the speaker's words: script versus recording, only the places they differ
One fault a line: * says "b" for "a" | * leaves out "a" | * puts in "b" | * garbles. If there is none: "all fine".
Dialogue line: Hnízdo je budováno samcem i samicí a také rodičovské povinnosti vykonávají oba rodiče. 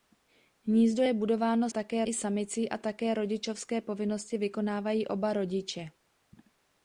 * says "také" for "samcem"